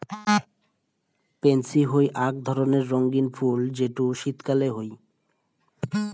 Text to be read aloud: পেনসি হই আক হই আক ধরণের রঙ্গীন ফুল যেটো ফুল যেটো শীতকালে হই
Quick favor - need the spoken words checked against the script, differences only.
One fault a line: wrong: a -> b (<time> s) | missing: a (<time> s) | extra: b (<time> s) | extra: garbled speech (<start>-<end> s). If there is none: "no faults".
missing: হই আক (2.4 s)
missing: ফুল যেটো (4.0 s)